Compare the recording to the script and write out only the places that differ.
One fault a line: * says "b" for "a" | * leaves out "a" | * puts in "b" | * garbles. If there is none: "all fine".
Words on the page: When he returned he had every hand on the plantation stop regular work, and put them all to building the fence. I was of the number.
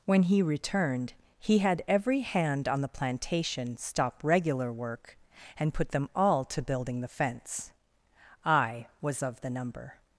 all fine